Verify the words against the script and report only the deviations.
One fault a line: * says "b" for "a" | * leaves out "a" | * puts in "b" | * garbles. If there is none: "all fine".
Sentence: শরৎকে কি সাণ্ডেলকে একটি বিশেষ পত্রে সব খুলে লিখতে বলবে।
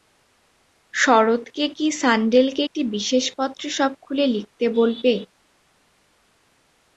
all fine